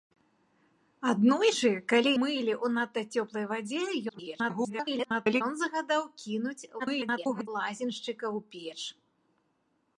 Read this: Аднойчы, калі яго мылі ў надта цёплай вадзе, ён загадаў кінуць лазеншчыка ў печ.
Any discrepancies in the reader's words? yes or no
yes